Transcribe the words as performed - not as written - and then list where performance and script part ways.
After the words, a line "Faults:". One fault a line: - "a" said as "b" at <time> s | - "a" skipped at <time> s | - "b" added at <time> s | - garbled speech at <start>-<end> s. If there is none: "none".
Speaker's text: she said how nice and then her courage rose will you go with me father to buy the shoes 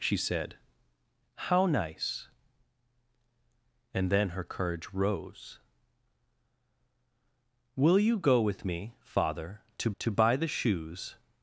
she said how nice and then her courage rose will you go with me father to to buy the shoes
Faults:
- "to" added at 10.0 s